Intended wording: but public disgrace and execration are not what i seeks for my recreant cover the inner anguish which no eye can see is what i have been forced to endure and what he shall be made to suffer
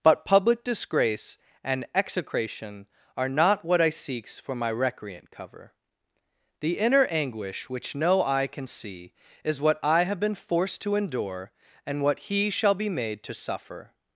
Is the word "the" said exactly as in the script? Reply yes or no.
yes